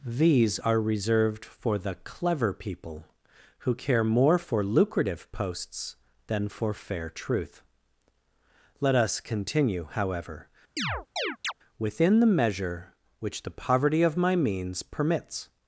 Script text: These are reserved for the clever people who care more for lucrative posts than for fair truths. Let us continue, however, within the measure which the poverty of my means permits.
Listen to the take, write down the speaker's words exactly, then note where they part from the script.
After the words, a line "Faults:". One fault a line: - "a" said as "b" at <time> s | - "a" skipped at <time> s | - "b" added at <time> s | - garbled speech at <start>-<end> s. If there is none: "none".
These are reserved for the clever people who care more for lucrative posts than for fair truth. Let us continue, however, within the measure which the poverty of my means permits.
Faults:
- "truths" said as "truth" at 7.1 s